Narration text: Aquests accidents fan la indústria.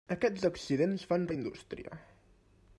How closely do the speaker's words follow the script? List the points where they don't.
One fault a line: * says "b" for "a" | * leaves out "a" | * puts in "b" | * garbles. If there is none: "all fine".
all fine